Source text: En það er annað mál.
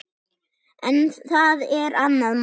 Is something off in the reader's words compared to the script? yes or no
no